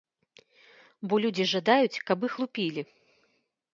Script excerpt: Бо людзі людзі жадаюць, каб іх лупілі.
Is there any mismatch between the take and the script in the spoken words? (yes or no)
yes